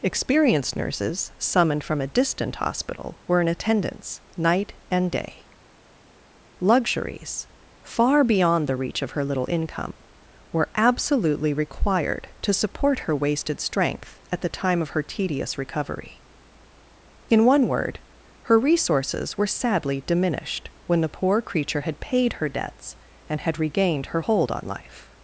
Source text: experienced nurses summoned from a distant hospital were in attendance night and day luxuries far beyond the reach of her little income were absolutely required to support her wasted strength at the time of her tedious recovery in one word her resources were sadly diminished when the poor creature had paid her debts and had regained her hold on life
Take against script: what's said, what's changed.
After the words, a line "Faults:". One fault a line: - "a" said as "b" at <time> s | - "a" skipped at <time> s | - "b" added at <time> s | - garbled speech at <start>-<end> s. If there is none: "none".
experienced nurses summoned from a distant hospital were in attendance night and day luxuries far beyond the reach of her little income were absolutely required to support her wasted strength at the time of her tedious recovery in one word her resources were sadly diminished when the poor creature had paid her debts and had regained her hold on life
Faults:
none